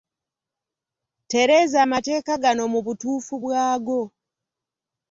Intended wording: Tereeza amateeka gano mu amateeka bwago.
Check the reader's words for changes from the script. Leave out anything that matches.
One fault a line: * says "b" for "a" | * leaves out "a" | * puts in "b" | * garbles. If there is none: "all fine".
* says "butuufu" for "amateeka"